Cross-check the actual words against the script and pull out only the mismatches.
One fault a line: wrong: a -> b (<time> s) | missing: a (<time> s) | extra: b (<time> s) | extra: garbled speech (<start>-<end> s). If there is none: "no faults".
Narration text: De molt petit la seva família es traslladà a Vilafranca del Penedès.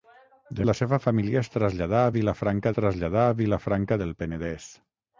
missing: molt petit (0.7 s)
extra: traslladà a Vilafranca (2.8 s)